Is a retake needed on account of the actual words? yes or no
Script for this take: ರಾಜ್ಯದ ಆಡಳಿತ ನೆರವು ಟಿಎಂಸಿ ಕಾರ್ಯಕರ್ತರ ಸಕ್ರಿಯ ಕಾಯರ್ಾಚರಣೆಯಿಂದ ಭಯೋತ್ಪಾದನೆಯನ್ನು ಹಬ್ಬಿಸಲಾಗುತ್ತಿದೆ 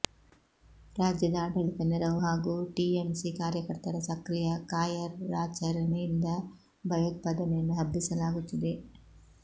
yes